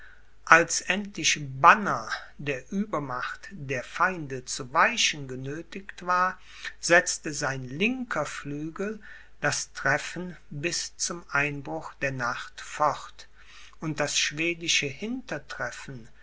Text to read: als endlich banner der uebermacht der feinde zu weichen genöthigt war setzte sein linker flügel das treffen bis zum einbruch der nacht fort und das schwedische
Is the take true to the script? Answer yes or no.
yes